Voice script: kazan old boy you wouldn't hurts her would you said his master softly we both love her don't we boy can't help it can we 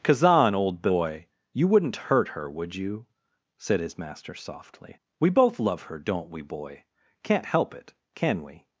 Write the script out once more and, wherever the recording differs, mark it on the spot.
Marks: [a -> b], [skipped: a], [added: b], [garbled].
kazan old boy you wouldn't [hurts -> hurt] her would you said his master softly we both love her don't we boy can't help it can we